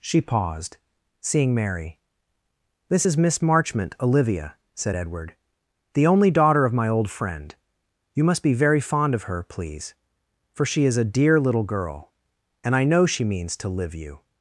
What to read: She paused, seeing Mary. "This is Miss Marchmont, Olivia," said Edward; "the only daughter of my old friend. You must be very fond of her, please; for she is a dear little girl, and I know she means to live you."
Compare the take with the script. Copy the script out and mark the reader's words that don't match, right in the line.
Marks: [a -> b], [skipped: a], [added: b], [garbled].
She paused, seeing Mary. "This is Miss Marchmont, Olivia," said Edward; "the only daughter of my old friend. You must be very fond of her, please; for she is a dear little girl, and I know she means to live you."